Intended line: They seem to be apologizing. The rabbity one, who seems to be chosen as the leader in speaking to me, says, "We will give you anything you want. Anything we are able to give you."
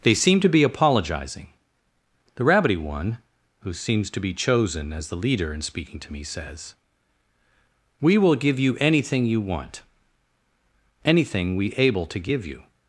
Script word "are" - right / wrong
wrong